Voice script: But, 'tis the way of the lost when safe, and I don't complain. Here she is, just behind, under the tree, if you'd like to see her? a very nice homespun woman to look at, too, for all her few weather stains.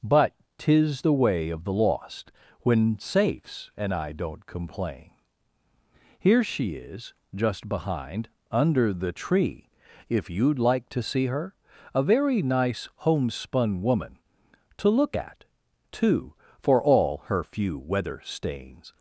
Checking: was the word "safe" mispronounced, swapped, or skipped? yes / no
yes